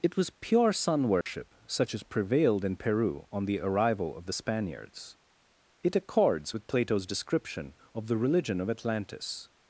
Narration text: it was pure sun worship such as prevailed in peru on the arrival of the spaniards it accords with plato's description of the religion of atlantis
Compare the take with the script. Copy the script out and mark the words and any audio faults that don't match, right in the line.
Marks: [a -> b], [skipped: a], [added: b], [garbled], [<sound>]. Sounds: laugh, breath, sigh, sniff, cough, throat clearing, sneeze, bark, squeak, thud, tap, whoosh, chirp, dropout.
it was pure sun worship [dropout] such as prevailed in peru on the arrival of the spaniards it accords with plato's description of the religion of atlantis